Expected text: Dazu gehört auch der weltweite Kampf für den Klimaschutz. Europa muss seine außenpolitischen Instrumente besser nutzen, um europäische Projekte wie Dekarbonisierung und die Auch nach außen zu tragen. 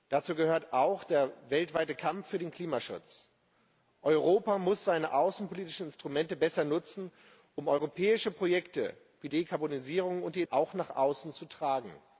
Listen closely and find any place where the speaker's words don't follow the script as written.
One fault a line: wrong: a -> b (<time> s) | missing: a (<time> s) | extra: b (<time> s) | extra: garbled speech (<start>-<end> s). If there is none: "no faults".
no faults